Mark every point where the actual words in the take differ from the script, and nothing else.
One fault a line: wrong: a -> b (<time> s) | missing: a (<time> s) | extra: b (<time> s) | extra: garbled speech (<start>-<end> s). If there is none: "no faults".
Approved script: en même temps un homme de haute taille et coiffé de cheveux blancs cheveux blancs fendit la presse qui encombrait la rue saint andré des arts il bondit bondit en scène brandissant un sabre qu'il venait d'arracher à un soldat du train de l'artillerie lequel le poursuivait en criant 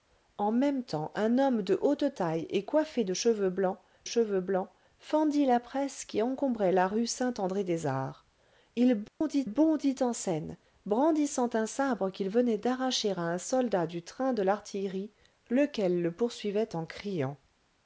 no faults